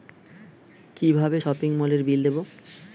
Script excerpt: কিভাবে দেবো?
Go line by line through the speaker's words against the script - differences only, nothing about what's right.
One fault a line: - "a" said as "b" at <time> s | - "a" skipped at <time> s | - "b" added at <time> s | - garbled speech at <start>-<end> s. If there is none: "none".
- "সপিং মলের বিল" added at 1.4 s